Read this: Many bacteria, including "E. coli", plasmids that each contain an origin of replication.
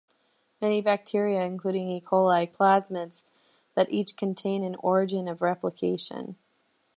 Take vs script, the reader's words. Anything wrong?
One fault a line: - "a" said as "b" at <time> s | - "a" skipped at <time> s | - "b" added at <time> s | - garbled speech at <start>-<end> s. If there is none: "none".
none